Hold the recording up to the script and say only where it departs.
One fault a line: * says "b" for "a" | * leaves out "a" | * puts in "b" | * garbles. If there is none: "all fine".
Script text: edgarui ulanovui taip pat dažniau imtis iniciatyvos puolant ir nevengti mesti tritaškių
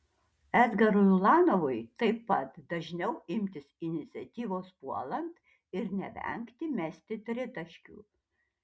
all fine